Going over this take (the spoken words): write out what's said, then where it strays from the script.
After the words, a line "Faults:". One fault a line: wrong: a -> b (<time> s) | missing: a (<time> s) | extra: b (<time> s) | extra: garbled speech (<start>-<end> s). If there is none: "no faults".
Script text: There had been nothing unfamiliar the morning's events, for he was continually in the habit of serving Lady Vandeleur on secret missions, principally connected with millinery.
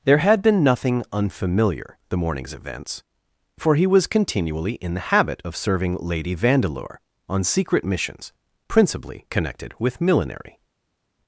There had been nothing unfamiliar the morning's events, for he was continually in the habit of serving Lady Vandeleur on secret missions, principally connected with millinery.
Faults:
no faults